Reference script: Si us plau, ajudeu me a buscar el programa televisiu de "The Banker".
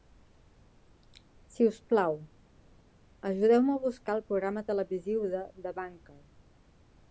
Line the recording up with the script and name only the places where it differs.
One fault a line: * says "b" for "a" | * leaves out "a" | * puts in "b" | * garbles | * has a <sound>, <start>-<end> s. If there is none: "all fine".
all fine